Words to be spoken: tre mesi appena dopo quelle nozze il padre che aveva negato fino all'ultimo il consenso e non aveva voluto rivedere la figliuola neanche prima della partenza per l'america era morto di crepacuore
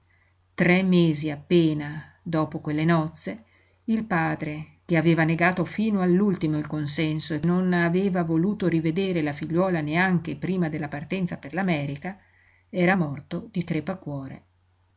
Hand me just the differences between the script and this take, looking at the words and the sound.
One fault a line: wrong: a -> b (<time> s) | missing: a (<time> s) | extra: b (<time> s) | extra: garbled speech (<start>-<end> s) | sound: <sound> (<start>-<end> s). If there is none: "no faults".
no faults